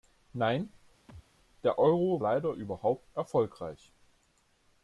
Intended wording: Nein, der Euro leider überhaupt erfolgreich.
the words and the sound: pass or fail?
fail